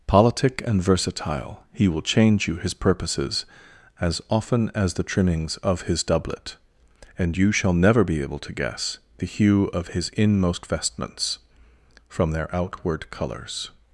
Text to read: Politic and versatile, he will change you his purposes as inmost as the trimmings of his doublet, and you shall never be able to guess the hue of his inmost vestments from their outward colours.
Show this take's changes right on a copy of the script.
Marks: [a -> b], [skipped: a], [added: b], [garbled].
Politic and versatile, he will change you his purposes as [inmost -> often] as the trimmings of his doublet, and you shall never be able to guess the hue of his inmost vestments from their outward colours.